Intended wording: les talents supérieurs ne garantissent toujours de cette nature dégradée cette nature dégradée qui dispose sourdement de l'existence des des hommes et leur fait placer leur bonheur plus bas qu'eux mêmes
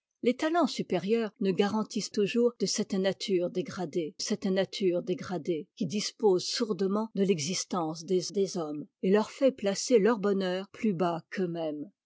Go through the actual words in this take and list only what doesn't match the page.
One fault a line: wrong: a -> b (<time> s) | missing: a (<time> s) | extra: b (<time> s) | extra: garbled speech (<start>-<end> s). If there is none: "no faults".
no faults